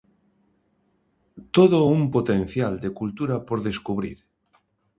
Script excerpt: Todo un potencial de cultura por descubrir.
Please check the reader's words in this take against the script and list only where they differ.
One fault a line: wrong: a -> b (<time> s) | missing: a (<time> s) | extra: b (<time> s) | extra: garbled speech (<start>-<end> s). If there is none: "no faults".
no faults